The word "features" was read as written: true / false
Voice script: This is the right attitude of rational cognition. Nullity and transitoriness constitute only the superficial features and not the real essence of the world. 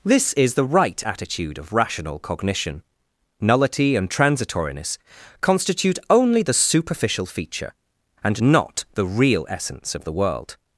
false